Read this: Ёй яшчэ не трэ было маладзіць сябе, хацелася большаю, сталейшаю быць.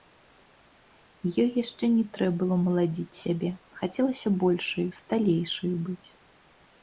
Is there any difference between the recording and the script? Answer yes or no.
no